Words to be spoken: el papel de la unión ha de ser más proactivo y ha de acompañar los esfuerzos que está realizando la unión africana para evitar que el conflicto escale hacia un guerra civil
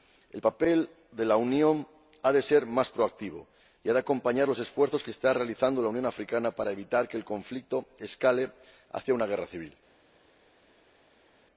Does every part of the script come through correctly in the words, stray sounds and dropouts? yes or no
no